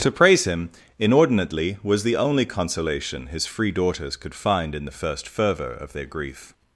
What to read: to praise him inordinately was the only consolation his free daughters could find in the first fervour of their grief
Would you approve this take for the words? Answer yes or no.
yes